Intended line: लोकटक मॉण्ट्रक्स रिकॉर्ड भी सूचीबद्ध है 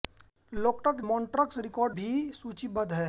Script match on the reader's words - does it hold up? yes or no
yes